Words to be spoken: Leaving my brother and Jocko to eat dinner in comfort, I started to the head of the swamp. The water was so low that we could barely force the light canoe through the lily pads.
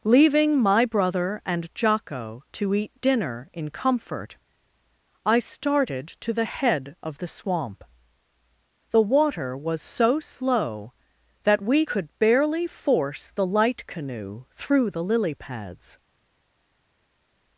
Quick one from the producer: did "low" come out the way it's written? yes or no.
no